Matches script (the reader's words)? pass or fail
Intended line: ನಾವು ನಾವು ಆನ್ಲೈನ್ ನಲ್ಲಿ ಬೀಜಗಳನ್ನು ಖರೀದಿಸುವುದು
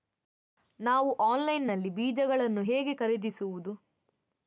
fail